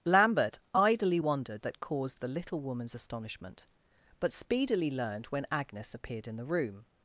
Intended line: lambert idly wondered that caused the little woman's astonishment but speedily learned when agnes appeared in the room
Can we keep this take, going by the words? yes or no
yes